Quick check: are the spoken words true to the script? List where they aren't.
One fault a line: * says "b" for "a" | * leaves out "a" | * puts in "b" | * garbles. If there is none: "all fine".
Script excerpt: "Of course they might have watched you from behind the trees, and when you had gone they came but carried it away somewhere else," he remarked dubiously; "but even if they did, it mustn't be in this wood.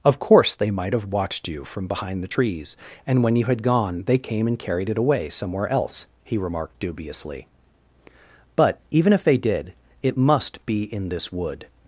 * says "and" for "but"
* says "must" for "mustn't"